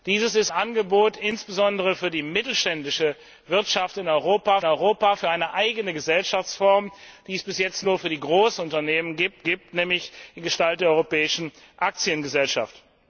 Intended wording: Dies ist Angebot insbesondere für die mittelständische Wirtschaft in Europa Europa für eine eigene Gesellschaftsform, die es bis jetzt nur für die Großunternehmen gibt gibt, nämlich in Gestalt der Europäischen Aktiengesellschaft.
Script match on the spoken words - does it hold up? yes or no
yes